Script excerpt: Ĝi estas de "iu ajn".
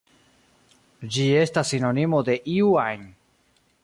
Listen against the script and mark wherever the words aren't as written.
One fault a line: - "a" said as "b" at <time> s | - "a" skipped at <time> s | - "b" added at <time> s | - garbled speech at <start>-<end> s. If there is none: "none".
- "sinonimo" added at 1.8 s